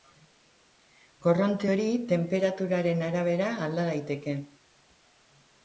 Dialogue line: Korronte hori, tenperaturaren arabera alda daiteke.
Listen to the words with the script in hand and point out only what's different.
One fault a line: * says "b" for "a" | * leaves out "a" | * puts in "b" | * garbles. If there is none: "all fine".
all fine